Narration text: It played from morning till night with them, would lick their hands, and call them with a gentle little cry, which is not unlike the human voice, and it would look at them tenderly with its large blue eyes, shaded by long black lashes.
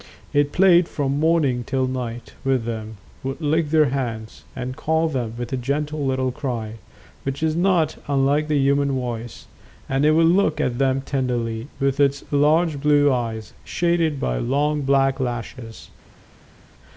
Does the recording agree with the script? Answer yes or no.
yes